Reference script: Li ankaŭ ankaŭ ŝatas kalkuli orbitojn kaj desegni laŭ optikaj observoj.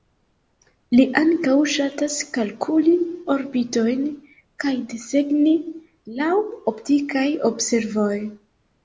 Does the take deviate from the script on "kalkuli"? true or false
false